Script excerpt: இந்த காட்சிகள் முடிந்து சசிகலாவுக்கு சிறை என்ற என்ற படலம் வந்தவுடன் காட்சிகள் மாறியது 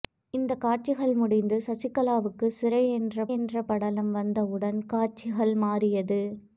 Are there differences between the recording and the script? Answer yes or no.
no